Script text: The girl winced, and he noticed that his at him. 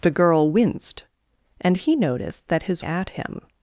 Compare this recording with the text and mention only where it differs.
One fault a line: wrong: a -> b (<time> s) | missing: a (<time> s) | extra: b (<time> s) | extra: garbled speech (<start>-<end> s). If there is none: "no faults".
no faults